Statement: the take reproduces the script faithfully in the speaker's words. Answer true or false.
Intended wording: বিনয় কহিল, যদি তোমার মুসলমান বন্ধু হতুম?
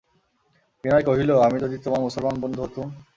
false